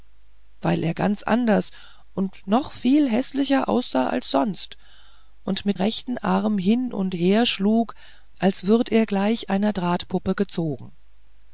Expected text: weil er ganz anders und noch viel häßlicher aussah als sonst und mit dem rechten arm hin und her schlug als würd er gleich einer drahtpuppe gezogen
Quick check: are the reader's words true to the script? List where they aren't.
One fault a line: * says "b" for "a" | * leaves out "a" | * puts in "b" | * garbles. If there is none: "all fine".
* leaves out "dem"